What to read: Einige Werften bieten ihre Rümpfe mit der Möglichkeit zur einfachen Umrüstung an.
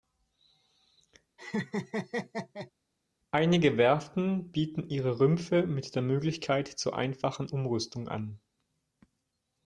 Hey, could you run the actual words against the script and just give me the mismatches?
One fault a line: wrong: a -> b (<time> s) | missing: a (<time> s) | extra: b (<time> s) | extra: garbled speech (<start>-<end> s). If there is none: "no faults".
no faults